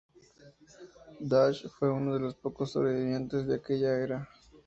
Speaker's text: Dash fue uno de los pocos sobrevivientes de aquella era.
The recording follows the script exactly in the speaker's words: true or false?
true